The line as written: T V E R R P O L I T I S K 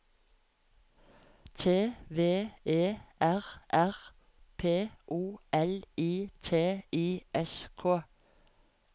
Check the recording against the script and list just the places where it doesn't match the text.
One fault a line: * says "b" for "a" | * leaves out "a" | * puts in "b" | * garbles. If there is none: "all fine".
all fine